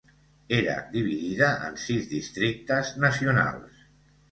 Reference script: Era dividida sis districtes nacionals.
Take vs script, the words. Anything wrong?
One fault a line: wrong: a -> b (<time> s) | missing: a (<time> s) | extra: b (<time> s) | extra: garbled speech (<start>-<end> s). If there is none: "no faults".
extra: en (1.7 s)